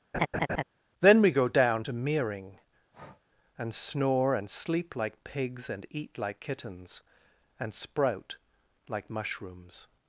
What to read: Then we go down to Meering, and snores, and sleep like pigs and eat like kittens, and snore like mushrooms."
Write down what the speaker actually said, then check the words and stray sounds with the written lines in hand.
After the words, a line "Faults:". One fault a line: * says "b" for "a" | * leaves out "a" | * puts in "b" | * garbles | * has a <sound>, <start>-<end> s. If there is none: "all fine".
Then we go down to Meering, and snore, and sleep like pigs and eat like kittens, and sprout like mushrooms."
Faults:
* has a laugh, 0.1-0.6 s
* has a breath, 2.9-3.2 s
* says "snore" for "snores"
* says "sprout" for "snore"